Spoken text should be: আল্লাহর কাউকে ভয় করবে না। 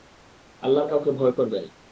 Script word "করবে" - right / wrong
right